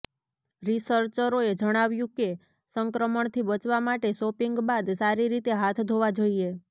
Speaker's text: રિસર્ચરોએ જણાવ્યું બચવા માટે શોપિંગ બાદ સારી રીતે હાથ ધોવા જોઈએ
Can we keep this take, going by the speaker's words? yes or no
no